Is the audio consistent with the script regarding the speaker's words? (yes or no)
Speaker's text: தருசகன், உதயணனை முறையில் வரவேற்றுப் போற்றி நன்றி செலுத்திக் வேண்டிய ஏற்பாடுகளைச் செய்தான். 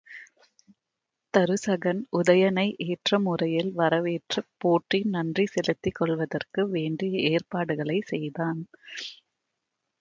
no